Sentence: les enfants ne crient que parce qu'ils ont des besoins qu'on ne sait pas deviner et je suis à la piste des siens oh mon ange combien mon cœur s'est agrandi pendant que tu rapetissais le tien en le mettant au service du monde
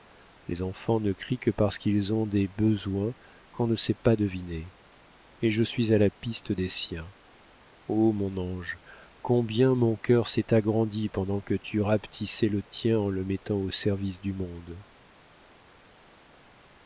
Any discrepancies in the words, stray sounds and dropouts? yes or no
no